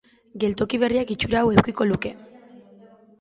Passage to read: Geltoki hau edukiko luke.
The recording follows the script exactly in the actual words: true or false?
false